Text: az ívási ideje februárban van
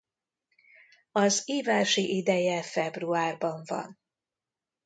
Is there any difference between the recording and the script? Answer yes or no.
no